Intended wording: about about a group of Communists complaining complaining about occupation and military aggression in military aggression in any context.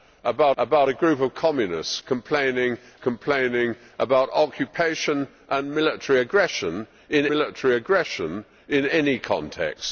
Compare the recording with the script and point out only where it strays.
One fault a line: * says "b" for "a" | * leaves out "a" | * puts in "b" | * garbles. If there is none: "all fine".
all fine